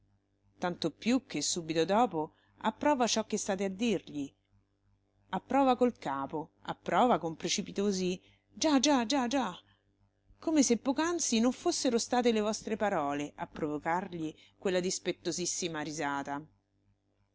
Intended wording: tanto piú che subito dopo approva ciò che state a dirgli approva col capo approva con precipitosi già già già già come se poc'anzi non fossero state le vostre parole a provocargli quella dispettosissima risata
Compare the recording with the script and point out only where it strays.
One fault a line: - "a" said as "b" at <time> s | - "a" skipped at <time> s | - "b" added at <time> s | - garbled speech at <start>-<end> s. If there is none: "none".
none